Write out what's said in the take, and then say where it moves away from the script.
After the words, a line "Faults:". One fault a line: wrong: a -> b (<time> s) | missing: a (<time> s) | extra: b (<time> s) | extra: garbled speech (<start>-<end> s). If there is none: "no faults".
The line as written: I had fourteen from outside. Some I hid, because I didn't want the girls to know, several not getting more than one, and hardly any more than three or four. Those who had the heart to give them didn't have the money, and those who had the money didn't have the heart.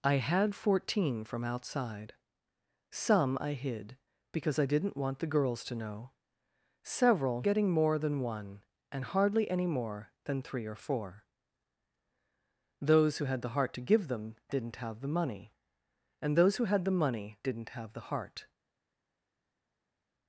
I had fourteen from outside. Some I hid, because I didn't want the girls to know, several getting more than one, and hardly any more than three or four. Those who had the heart to give them didn't have the money, and those who had the money didn't have the heart.
Faults:
missing: not (7.4 s)